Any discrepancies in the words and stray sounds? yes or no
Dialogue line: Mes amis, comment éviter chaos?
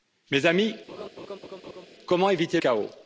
yes